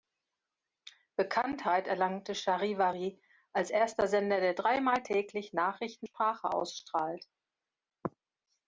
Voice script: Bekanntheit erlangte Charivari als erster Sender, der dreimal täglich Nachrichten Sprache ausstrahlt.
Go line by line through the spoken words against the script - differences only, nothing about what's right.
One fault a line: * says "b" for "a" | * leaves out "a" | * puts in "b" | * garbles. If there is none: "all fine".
all fine